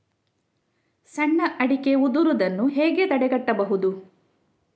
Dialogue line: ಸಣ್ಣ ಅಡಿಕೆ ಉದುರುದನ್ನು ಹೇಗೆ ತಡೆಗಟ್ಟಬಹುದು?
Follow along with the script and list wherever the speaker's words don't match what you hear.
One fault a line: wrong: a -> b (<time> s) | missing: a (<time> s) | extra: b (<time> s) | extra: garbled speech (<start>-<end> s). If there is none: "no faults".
no faults